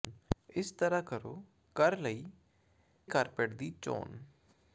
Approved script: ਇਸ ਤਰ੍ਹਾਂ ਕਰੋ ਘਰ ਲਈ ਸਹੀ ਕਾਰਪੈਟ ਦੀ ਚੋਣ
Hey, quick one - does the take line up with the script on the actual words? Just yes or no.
no